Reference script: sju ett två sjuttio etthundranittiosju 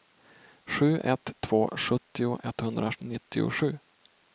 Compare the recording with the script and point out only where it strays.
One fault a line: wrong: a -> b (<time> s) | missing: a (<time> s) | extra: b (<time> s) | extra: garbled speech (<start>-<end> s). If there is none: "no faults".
no faults